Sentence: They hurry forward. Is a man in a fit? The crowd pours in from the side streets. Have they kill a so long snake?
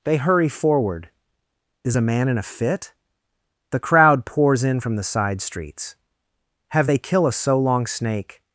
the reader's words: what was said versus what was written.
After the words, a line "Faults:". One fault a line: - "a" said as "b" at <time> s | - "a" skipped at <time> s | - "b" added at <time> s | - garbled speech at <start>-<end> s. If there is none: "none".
They hurry forward. Is a man in a fit? The crowd pours in from the side streets. Have they kill a so long snake?
Faults:
none